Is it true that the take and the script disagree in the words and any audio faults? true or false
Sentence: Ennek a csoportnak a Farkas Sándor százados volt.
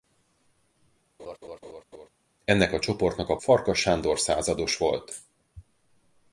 true